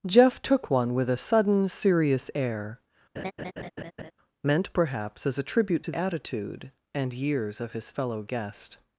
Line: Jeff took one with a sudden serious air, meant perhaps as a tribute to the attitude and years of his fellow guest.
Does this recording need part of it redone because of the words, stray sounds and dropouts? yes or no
yes